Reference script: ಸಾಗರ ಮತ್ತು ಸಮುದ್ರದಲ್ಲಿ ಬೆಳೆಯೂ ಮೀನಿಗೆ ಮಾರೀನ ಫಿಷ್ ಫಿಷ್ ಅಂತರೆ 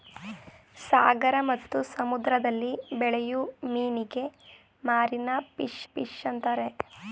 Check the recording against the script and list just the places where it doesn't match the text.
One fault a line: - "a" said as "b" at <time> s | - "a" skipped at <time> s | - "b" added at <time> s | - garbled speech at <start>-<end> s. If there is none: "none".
none